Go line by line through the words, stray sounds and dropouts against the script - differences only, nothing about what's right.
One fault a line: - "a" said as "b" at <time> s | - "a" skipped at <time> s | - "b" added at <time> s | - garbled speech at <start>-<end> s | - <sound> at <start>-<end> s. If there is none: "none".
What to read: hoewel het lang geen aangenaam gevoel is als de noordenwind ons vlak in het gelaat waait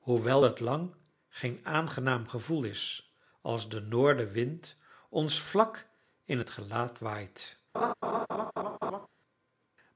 - laugh at 7.7-9.1 s